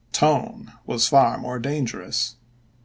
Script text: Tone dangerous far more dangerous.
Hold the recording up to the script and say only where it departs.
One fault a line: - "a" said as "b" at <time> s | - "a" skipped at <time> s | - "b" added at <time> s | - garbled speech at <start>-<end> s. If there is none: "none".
- "dangerous" said as "was" at 0.9 s